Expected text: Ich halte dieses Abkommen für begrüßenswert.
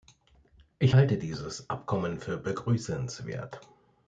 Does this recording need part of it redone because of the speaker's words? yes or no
no